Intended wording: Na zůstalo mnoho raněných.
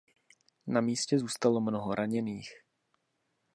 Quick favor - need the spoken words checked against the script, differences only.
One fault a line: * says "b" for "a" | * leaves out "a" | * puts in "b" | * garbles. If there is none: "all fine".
* puts in "místě"